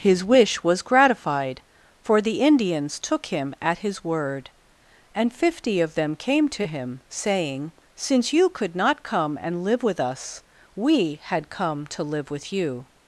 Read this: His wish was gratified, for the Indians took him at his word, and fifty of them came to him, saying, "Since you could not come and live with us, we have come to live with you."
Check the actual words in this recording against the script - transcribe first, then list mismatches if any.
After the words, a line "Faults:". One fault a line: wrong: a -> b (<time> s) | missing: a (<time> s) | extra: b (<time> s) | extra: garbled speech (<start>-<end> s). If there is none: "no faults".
His wish was gratified, for the Indians took him at his word, and fifty of them came to him, saying, "Since you could not come and live with us, we had come to live with you."
Faults:
wrong: have -> had (11.2 s)